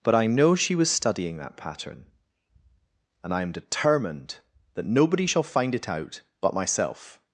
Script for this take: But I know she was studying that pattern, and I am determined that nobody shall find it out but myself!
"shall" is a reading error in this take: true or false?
false